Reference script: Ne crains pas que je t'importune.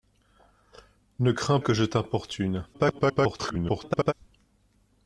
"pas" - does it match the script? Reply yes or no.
no